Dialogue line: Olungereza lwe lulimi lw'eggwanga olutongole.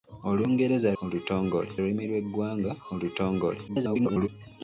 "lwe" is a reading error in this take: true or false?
true